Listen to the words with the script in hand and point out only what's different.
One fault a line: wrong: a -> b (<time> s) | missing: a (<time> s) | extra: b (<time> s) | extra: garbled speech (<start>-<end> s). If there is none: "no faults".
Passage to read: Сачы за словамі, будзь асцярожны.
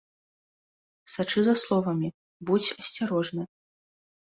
no faults